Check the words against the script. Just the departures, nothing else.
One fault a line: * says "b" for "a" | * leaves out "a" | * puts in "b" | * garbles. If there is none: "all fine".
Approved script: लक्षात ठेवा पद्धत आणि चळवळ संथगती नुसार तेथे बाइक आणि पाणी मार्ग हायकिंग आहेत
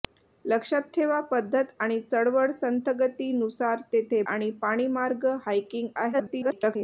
* leaves out "बाइक"
* garbles